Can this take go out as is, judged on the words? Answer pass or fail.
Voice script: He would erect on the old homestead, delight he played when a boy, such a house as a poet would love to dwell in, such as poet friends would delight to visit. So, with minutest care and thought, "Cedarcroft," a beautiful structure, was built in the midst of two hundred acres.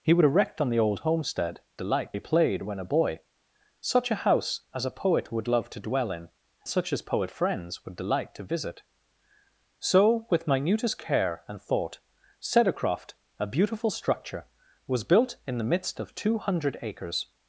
pass